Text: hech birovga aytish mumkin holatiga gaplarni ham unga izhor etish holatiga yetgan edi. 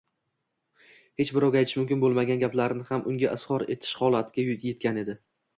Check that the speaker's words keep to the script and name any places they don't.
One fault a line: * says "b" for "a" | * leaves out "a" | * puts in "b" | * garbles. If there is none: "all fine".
* says "bo'lmagan" for "holatiga"